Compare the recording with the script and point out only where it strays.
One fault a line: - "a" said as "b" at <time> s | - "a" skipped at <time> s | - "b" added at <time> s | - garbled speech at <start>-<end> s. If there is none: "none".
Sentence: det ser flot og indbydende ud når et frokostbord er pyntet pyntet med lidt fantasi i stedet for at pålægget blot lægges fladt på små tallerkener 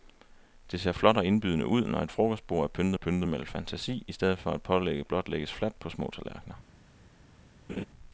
none